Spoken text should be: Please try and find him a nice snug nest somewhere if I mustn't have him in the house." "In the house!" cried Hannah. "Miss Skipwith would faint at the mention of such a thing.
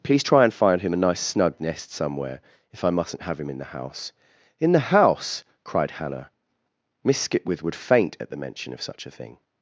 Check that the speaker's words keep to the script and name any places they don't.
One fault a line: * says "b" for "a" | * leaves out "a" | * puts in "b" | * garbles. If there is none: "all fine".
all fine